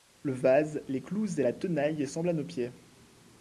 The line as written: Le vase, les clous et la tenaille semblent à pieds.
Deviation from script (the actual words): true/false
true